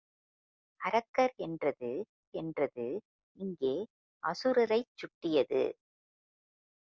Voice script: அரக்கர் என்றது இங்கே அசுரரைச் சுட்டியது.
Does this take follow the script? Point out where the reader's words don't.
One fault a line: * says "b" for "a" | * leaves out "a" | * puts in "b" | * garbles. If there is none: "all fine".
* puts in "என்றது"